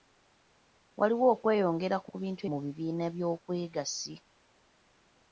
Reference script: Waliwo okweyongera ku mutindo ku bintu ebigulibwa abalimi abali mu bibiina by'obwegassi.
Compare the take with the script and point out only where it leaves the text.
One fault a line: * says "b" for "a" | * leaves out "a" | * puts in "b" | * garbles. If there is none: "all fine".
* leaves out "mutindo"
* leaves out "ebigulibwa abalimi abali"